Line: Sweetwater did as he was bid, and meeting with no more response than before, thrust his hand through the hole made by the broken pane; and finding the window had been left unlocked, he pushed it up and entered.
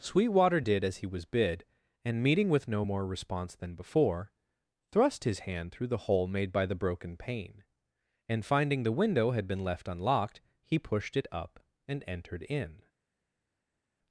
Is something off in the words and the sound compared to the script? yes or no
yes